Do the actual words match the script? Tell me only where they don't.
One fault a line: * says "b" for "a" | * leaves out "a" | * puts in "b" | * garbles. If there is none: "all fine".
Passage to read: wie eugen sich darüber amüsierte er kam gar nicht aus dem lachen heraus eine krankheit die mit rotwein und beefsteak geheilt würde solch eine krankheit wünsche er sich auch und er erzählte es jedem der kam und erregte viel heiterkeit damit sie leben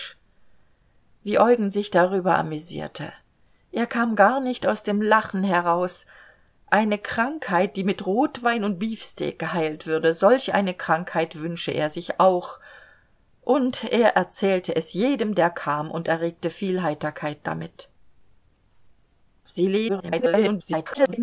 * garbles